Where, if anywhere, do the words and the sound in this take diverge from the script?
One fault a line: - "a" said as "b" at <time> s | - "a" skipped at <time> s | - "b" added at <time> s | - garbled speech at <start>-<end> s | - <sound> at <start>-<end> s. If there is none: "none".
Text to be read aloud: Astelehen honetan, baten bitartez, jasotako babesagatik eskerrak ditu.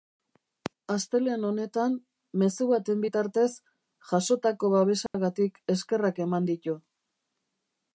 - "mezu" added at 2.4 s
- dropout at 5.1-5.1 s
- "eman" added at 6.3 s